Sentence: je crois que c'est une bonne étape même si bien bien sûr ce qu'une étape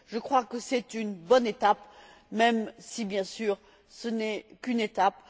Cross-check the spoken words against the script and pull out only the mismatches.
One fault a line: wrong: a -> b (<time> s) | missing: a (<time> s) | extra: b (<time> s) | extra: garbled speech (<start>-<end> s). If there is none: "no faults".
missing: bien (3.2 s)
extra: n'est (4.1 s)